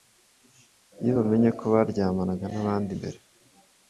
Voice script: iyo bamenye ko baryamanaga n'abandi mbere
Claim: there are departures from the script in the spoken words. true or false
false